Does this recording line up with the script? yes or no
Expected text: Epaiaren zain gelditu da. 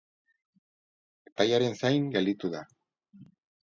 yes